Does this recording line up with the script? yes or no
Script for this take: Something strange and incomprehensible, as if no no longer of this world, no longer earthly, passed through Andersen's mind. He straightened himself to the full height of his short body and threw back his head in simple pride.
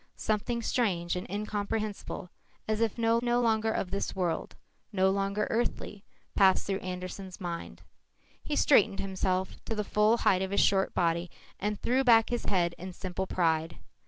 yes